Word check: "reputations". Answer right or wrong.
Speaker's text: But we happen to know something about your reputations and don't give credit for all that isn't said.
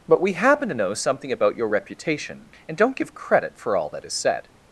wrong